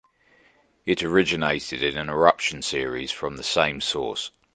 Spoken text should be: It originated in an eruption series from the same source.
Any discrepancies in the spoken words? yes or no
no